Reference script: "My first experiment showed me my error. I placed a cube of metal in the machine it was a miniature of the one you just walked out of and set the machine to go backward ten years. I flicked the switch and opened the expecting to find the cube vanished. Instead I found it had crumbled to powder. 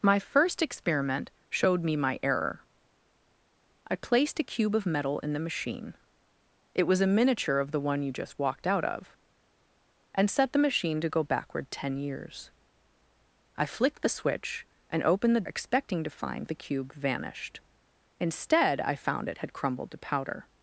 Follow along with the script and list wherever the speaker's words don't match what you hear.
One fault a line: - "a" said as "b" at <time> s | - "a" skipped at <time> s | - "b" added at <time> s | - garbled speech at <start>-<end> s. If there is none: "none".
none